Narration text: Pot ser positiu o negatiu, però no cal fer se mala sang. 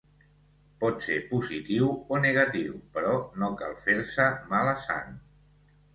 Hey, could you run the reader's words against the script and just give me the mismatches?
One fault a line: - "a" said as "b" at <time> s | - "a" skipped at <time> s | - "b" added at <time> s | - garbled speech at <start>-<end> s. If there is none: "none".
none